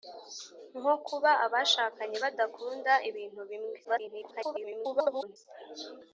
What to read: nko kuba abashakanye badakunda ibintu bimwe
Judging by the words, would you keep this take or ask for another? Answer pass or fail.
fail